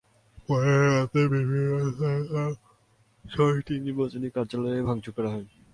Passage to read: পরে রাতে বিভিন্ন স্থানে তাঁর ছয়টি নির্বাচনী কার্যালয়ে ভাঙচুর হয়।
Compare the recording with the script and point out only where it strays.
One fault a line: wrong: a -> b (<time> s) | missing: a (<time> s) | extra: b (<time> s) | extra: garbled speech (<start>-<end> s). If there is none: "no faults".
extra: করা (5.2 s)